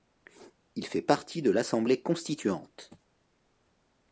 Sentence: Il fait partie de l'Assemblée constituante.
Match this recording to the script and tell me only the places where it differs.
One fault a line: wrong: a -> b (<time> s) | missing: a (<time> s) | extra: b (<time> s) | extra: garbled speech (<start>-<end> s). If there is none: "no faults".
no faults